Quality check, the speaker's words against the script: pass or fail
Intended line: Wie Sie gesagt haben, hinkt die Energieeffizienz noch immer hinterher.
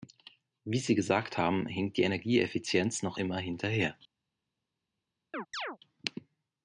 pass